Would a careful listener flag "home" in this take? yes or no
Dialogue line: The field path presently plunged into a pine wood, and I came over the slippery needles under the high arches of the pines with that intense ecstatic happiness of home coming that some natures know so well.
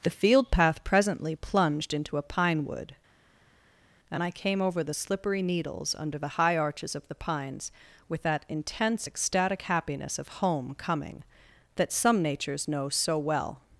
no